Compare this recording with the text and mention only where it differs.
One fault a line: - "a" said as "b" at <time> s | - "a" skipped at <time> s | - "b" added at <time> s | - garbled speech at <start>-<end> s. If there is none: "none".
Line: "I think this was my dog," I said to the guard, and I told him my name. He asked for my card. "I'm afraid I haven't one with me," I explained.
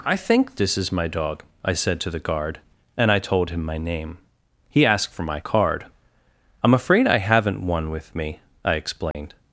- "was" said as "is" at 0.8 s